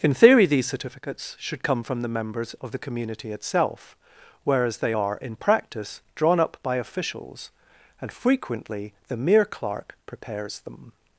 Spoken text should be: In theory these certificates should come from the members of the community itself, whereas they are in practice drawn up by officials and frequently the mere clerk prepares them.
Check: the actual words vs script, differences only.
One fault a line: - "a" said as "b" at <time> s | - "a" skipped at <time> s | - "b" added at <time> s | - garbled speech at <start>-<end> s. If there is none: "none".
none